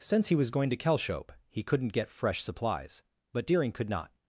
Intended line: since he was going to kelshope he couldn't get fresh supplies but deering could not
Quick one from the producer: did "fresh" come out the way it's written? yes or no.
yes